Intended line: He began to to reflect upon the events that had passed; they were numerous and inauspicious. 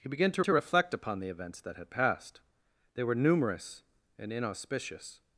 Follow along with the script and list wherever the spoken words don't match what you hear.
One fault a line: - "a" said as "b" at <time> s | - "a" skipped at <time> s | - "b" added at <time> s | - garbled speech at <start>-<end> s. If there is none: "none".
none